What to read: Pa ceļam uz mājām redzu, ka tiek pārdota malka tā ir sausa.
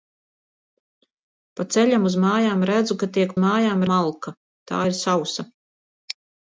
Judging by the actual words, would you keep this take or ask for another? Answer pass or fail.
fail